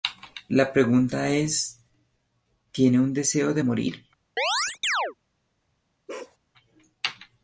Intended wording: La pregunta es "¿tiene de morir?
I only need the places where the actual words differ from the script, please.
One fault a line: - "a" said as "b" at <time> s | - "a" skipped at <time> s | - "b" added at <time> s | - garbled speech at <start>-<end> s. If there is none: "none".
- "un deseo" added at 3.0 s